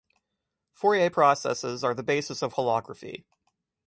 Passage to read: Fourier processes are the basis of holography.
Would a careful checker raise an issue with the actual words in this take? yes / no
no